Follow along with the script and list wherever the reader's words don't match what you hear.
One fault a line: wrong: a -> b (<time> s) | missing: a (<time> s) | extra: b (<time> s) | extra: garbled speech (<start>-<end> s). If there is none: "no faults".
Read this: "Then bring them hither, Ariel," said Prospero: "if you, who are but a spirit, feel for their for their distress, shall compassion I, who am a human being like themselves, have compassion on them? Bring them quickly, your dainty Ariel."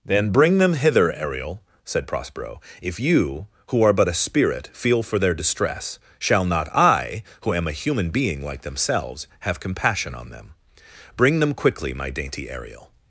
missing: for their (5.3 s)
wrong: compassion -> not (6.5 s)
wrong: your -> my (11.9 s)